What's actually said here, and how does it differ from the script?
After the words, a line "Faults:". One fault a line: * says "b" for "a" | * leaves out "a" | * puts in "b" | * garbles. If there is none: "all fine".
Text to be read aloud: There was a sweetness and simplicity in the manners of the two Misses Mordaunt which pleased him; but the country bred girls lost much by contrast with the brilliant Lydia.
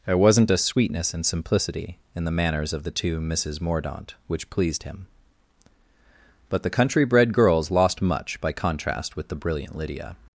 There wasn't a sweetness and simplicity in the manners of the two Misses Mordaunt which pleased him; but the country bred girls lost much by contrast with the brilliant Lydia.
Faults:
* says "wasn't" for "was"